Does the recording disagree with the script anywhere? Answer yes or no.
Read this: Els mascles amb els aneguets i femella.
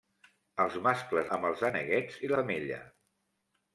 no